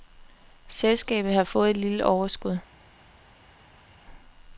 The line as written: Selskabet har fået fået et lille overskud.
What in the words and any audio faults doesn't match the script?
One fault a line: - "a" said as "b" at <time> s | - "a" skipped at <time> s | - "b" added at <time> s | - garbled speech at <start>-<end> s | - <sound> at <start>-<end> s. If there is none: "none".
- "fået" skipped at 1.7 s